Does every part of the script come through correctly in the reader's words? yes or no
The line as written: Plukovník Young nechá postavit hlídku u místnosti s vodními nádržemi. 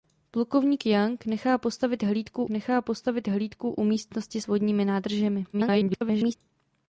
no